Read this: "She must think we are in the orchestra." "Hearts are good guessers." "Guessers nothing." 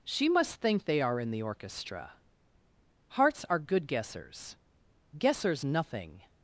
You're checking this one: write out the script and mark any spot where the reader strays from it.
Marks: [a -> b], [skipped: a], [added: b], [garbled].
"She must think [we -> they] are in the orchestra." "Hearts are good guessers." "Guessers nothing."